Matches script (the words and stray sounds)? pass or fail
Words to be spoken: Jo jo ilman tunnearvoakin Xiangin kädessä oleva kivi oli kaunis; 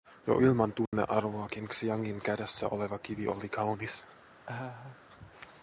fail